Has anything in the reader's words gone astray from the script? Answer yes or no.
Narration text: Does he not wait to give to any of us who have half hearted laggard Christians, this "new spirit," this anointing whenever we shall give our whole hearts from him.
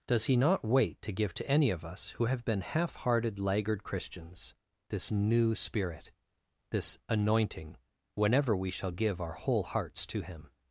yes